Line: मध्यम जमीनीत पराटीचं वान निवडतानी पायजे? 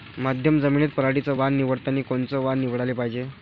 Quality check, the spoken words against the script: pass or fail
fail